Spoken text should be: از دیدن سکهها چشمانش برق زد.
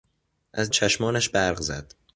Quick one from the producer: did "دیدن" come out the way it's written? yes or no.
no